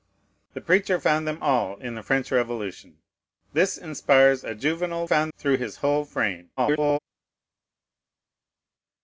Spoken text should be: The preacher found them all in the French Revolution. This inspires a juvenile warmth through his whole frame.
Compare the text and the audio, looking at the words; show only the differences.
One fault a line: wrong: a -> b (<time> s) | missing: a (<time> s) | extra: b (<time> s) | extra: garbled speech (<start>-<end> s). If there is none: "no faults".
wrong: warmth -> found (5.0 s)
extra: garbled speech (6.6-7.0 s)